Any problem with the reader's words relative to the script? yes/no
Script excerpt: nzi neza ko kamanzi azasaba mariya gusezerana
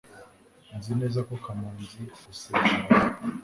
yes